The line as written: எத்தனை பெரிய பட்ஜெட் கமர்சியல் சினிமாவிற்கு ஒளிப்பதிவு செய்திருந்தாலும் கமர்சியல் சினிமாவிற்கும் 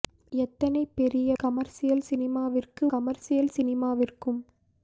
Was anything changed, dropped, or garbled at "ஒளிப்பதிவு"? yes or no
yes